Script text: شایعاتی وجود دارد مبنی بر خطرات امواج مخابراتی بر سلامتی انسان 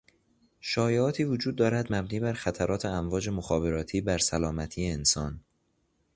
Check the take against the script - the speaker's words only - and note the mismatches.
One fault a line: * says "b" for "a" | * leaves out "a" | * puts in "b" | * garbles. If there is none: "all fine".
all fine